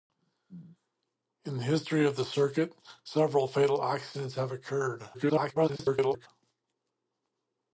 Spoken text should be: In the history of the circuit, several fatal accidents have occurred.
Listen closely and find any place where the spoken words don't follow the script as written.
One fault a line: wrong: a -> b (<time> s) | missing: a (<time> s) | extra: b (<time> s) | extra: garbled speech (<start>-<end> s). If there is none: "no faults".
extra: garbled speech (5.1-6.3 s)